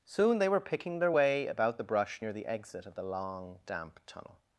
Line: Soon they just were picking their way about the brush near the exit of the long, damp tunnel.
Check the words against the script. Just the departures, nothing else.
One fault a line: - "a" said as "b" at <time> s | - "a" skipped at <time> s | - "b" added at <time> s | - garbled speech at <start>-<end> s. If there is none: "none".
- "just" skipped at 0.5 s